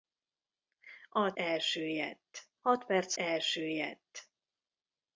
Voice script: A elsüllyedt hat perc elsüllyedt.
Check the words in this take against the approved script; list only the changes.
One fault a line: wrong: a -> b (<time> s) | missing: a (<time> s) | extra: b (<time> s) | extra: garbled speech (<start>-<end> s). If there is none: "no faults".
no faults